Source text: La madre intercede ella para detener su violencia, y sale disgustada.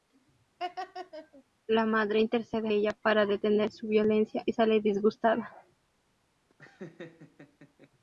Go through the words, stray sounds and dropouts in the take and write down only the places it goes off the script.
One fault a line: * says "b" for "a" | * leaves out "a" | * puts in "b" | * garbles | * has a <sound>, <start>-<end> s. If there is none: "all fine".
* has a laugh, 0.6-1.4 s
* has a laugh, 6.5-7.9 s